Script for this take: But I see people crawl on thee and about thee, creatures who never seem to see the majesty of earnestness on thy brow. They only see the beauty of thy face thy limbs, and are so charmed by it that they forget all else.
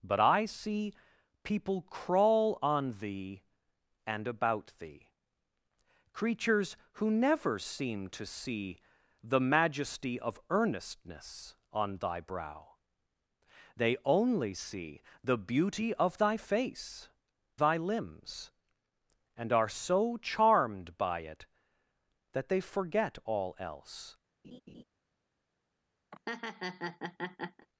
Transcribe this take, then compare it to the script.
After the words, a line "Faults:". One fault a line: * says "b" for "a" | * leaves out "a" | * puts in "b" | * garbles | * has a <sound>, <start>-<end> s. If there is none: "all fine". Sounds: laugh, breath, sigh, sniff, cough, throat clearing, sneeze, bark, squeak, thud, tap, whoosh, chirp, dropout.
But I see people crawl on thee and about thee, creatures who never seem to see the majesty of earnestness on thy brow. They only see the beauty of thy face thy limbs, and are so charmed by it that they forget all else.
Faults:
* has a laugh, 24.4-24.8 s
* has a laugh, 26.1-27.7 s